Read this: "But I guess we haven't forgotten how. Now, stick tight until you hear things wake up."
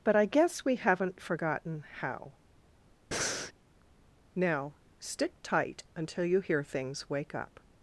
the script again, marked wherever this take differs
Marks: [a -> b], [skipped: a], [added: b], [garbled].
"But I guess we haven't forgotten how. Now, stick tight until you hear things wake up."